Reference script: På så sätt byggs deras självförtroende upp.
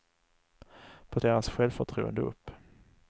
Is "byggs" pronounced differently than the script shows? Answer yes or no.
yes